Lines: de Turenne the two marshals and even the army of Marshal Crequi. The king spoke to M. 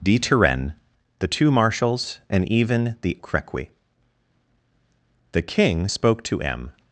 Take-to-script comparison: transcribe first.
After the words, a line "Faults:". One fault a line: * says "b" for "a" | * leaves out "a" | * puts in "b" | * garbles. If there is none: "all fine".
de Turenne the two marshals and even the Crequi. The king spoke to M.
Faults:
* leaves out "army of Marshal"